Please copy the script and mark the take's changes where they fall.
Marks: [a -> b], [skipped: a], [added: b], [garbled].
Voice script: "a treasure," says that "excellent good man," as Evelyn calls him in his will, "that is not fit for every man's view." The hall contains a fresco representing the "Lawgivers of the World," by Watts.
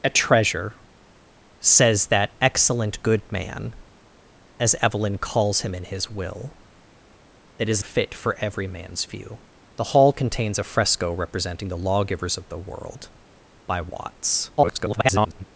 "a treasure," says that "excellent good man," as Evelyn calls him in his will, "that is [skipped: not] fit for every man's view." The hall contains a fresco representing the "Lawgivers of the World," by Watts. [garbled]